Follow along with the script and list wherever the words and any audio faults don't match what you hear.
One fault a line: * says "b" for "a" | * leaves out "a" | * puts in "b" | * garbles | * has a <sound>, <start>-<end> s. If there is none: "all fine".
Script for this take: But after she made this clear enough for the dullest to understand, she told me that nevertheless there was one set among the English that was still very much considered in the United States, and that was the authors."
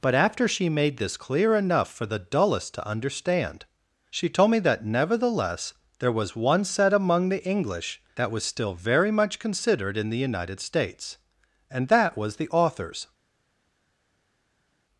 all fine